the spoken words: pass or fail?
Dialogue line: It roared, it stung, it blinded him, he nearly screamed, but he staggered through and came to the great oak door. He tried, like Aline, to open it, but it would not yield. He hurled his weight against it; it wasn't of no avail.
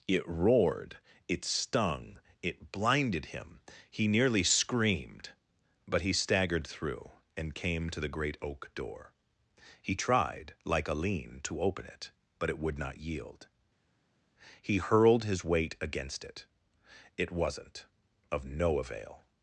pass